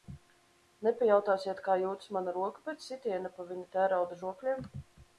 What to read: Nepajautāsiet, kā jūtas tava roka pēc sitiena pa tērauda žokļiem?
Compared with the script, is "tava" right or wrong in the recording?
wrong